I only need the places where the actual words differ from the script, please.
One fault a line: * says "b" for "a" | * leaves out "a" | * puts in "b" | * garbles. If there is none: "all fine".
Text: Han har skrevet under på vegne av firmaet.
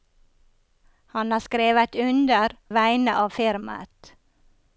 * leaves out "på"